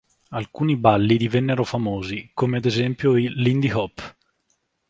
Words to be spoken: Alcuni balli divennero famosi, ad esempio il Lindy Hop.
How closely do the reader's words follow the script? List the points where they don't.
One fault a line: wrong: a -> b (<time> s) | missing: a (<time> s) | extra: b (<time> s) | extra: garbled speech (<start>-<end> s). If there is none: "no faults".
extra: come (2.3 s)